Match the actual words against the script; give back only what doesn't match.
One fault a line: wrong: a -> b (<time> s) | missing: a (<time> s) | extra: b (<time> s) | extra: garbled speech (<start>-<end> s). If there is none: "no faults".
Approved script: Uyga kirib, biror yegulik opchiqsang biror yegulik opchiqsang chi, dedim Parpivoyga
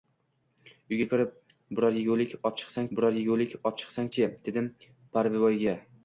no faults